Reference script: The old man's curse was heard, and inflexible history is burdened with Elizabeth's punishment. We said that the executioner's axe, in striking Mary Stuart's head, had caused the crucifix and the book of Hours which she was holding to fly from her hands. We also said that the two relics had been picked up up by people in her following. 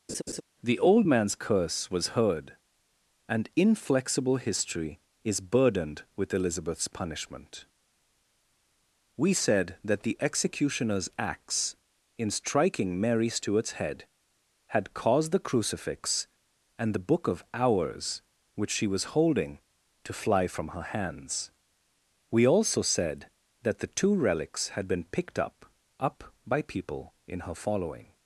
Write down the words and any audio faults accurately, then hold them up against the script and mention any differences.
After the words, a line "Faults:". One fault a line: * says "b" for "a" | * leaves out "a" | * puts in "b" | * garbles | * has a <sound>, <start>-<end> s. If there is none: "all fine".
The old man's curse was heard, and inflexible history is burdened with Elizabeth's punishment. We said that the executioner's axe, in striking Mary Stuart's head, had caused the crucifix and the book of Hours which she was holding to fly from her hands. We also said that the two relics had been picked up up by people in her following.
Faults:
* has a laugh, 0.1-0.4 s